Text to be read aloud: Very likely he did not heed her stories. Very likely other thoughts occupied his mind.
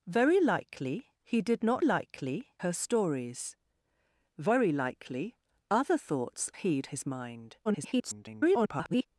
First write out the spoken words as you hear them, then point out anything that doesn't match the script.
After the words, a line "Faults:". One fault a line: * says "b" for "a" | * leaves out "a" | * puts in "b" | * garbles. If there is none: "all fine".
Very likely he did not likely her stories. Very likely other thoughts heed his mind. [garbled]
Faults:
* says "likely" for "heed"
* says "heed" for "occupied"
* garbles